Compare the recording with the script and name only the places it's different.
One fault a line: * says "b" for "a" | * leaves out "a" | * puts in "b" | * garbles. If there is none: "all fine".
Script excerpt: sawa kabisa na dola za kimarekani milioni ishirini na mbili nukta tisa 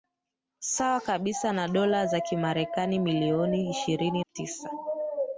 * leaves out "na mbili nukta"